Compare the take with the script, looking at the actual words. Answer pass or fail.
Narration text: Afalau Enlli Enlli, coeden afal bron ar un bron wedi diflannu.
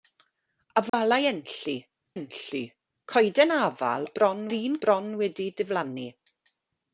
pass